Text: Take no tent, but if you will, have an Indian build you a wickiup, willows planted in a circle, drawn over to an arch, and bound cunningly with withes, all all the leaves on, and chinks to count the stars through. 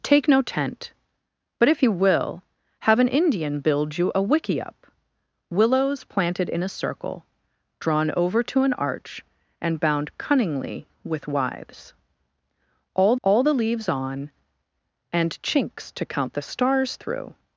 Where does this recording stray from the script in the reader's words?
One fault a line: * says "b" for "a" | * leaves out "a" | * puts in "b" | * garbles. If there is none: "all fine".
all fine